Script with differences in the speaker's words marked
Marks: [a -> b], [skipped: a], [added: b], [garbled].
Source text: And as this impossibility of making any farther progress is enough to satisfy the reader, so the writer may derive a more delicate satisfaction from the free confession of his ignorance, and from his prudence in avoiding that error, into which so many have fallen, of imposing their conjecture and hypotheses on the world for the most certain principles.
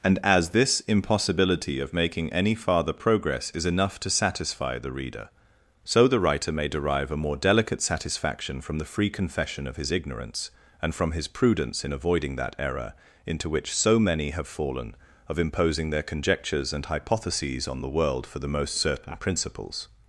And as this impossibility of making any farther progress is enough to satisfy the reader, so the writer may derive a more delicate satisfaction from the free confession of his ignorance, and from his prudence in avoiding that error, into which so many have fallen, of imposing their [conjecture -> conjectures] and hypotheses on the world for the most certain principles.